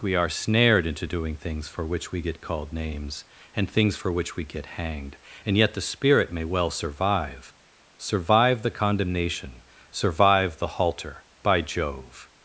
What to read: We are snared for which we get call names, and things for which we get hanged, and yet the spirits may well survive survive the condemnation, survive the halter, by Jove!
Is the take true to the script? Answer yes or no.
no